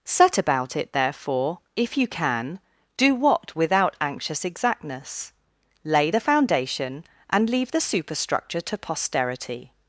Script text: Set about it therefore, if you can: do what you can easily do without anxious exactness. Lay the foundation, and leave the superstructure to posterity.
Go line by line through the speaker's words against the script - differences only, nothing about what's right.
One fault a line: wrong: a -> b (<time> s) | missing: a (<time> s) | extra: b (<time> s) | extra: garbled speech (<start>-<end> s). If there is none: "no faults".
missing: you can easily do (3.5 s)